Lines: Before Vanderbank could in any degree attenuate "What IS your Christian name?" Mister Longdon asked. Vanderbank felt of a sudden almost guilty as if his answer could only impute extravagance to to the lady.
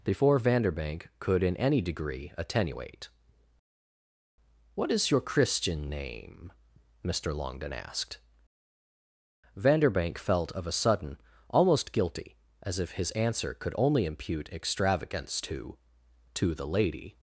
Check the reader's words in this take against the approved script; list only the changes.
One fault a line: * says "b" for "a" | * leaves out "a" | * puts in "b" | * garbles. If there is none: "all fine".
all fine